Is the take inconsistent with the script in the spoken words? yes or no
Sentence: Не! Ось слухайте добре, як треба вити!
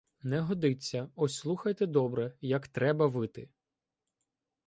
yes